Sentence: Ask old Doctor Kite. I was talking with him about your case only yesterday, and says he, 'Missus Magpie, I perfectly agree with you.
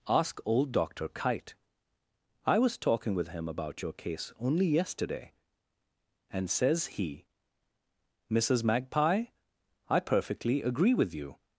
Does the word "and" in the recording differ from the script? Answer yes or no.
no